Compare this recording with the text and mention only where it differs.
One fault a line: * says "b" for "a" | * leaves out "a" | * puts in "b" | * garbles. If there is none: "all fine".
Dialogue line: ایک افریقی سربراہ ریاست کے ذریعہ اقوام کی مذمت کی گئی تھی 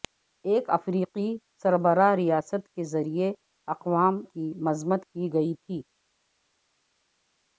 all fine